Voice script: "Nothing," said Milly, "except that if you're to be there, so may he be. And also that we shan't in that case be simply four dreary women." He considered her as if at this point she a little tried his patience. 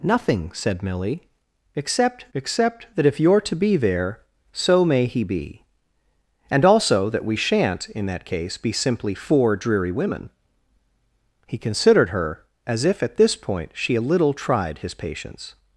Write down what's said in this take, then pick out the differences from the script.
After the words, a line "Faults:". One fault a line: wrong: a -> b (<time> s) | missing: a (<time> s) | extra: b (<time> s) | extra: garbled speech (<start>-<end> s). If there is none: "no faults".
"Nothing," said Milly, "except except that if you're to be there, so may he be. And also that we shan't in that case be simply four dreary women." He considered her as if at this point she a little tried his patience.
Faults:
extra: except (2.3 s)